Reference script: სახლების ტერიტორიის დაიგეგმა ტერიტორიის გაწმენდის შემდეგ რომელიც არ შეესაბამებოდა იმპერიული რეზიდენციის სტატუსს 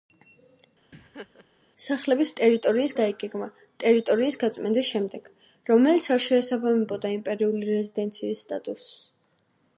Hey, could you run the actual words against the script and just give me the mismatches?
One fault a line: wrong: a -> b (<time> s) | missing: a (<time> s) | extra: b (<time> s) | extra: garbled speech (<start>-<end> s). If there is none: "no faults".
no faults